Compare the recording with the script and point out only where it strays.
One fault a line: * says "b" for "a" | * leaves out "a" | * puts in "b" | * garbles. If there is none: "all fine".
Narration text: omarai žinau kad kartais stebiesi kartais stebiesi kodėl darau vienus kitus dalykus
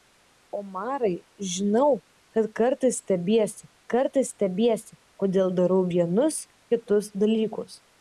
all fine